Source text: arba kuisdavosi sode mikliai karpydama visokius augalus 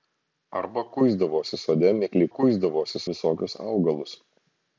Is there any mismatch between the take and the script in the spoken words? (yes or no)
yes